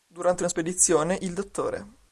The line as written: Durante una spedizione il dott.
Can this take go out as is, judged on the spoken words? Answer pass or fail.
pass